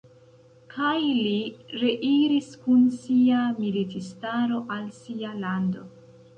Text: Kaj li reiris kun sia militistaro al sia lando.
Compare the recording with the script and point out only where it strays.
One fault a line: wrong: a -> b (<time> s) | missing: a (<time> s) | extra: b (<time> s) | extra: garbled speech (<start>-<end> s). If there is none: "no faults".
no faults